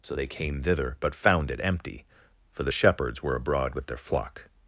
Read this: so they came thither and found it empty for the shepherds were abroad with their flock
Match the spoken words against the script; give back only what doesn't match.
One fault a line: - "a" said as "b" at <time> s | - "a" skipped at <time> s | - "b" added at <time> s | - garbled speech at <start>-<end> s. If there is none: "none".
- "and" said as "but" at 1.0 s